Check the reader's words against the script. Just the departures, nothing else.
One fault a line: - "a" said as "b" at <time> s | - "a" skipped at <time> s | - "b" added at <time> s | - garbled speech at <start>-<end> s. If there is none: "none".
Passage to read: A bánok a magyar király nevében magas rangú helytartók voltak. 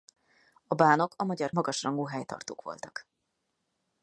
- "király nevében" skipped at 1.5 s